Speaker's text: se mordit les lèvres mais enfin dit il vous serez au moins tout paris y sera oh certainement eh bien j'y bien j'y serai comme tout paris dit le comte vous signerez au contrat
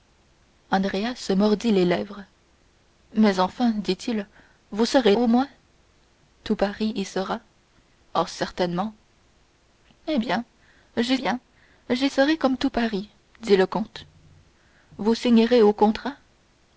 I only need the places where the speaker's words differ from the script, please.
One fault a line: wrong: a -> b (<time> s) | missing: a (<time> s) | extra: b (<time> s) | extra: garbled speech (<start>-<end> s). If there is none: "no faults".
no faults